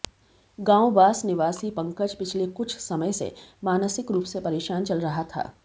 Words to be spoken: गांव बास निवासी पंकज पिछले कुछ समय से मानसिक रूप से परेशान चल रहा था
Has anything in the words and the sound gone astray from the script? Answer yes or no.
no